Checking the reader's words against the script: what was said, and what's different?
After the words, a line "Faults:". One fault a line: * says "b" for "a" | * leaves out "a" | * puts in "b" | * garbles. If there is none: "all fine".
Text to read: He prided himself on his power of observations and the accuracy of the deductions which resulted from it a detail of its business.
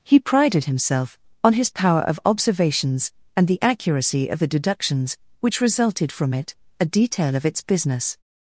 He prided himself on his power of observations and the accuracy of the deductions which resulted from it a detail of its business.
Faults:
all fine